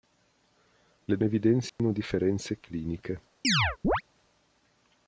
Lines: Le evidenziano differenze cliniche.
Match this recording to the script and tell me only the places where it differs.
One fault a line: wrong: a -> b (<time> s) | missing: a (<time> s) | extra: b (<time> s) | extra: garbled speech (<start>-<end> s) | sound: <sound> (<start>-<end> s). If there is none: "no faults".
sound: dropout (1.7-1.8 s)
sound: chirp (3.4-4.0 s)